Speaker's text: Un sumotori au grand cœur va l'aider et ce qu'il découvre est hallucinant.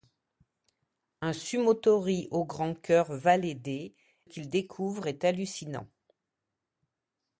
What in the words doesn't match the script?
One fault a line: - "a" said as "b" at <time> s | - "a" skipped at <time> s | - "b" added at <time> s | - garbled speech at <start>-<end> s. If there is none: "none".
- "et ce" skipped at 3.9 s